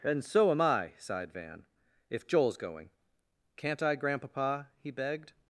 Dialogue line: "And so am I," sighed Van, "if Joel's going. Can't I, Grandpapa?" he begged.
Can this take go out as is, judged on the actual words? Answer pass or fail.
pass